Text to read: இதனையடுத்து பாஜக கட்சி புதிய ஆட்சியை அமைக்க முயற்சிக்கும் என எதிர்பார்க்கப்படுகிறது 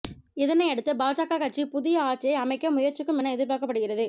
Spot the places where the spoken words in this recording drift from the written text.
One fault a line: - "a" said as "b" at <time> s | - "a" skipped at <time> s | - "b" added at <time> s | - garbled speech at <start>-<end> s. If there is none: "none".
none